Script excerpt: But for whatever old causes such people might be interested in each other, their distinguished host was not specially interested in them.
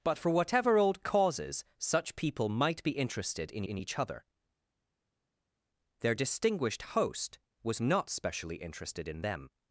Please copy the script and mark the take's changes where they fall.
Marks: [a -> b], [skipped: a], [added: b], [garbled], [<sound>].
But for whatever old causes such people might be interested in [added: in] each other, their distinguished host was not specially interested in them.